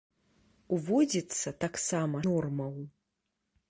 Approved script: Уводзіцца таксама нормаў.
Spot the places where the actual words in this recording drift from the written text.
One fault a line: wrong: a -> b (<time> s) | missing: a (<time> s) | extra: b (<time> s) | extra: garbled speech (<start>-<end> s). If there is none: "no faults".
no faults